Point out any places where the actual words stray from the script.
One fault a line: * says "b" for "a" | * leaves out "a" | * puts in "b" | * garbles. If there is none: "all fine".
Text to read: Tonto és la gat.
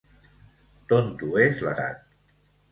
all fine